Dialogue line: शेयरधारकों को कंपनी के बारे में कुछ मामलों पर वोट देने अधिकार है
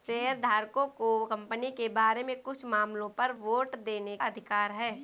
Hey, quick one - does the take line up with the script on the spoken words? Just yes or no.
yes